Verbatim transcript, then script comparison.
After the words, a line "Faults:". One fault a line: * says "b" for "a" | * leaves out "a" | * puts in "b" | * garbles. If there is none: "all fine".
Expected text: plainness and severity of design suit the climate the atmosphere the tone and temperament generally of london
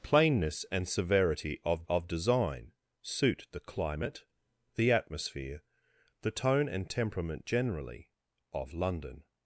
plainness and severity of of design suit the climate the atmosphere the tone and temperament generally of london
Faults:
* puts in "of"